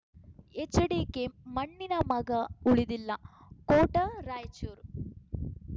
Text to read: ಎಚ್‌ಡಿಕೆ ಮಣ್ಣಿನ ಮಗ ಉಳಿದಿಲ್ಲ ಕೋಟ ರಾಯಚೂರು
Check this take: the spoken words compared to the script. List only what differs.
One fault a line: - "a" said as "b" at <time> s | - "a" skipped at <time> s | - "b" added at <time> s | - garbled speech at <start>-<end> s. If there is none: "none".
none